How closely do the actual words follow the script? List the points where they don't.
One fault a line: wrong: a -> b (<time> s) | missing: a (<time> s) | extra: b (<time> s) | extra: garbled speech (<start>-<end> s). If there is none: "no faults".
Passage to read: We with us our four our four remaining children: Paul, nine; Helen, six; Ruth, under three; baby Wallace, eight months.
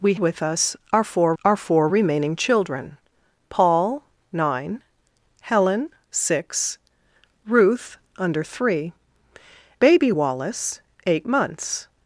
no faults